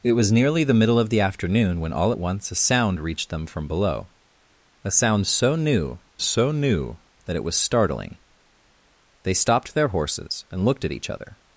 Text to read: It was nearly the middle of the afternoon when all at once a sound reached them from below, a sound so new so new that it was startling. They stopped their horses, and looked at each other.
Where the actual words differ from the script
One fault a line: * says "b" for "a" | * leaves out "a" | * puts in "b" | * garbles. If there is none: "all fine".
all fine